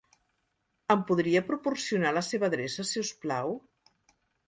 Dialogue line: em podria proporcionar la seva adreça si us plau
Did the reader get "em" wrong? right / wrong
right